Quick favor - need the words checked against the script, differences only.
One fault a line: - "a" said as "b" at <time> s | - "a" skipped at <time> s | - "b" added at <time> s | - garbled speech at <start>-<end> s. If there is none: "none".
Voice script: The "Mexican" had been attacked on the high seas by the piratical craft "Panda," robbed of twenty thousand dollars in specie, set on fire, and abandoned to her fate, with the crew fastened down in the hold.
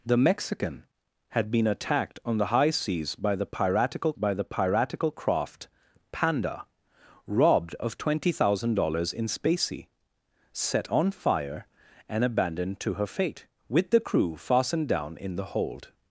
- "by the piratical" added at 4.1 s